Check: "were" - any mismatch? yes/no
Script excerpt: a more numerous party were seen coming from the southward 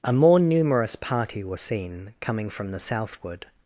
yes